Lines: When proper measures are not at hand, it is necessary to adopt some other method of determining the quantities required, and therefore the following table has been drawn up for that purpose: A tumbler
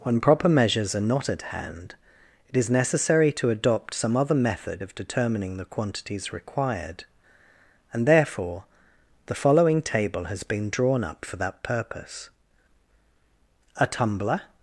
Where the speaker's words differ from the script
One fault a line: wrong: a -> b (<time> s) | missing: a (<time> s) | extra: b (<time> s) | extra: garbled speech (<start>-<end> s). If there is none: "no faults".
no faults